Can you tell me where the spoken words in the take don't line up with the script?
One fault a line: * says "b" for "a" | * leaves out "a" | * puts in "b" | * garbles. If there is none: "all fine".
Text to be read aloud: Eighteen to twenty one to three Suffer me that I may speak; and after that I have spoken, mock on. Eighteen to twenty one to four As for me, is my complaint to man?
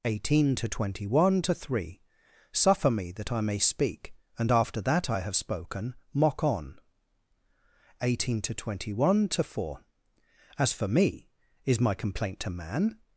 all fine